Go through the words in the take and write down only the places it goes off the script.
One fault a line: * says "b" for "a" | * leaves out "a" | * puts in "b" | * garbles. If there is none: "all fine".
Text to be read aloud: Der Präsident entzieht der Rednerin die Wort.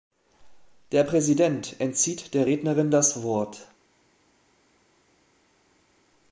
* says "das" for "die"